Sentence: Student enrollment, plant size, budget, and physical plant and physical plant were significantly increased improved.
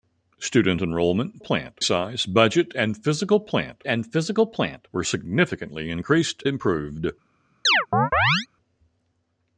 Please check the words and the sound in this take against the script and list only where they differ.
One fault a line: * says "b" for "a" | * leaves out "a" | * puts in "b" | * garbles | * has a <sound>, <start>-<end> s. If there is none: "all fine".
* has a chirp, 7.6-8.5 s